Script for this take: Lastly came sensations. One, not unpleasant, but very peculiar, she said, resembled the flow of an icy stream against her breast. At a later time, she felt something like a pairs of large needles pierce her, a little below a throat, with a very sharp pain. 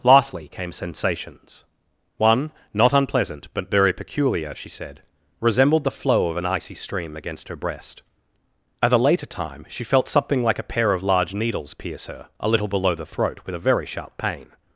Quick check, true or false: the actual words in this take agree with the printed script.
false